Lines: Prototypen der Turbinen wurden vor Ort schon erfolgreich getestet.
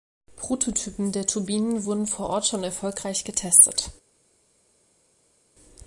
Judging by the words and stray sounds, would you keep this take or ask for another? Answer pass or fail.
pass